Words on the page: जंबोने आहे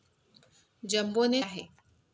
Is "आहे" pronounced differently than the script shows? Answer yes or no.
no